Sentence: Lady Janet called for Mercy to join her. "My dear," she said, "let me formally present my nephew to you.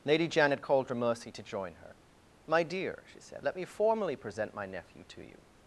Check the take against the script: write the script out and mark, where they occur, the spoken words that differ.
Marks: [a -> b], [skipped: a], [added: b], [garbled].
Lady Janet called for Mercy to join her. "My dear," she said, "let me formally present my nephew to you.